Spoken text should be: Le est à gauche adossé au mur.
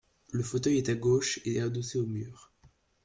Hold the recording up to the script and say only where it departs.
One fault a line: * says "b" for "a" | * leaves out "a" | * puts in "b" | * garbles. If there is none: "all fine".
* puts in "fauteuil"
* puts in "et"